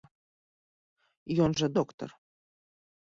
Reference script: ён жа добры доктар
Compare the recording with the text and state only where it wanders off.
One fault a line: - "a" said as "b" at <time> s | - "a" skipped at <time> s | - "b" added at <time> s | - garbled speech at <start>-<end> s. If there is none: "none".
- "добры" skipped at 1.7 s